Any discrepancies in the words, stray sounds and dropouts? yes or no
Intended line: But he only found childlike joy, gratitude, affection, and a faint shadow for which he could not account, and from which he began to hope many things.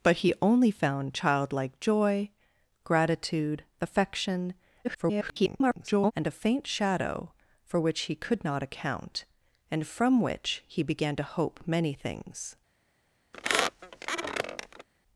yes